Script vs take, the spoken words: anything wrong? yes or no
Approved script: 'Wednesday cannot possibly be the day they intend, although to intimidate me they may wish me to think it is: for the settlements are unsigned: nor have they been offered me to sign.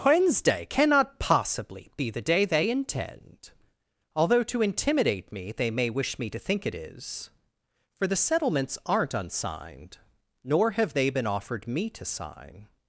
yes